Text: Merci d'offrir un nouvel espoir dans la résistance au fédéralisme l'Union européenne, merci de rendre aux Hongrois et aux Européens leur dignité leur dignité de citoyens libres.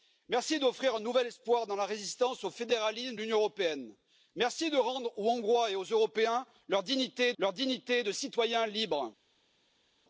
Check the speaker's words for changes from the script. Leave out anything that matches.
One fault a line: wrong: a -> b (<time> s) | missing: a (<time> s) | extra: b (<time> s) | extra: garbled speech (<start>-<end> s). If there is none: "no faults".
no faults